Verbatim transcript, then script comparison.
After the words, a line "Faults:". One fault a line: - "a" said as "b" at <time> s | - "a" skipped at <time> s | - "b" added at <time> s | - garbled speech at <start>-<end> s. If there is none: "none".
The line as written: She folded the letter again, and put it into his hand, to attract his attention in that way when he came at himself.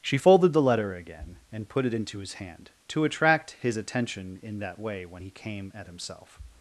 She folded the letter again, and put it into his hand, to attract his attention in that way when he came at himself.
Faults:
none